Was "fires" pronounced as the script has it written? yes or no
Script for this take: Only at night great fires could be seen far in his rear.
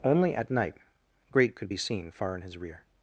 no